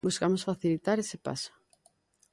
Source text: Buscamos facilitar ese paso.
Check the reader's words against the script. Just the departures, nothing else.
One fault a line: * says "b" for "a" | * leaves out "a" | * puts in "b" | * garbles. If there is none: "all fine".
all fine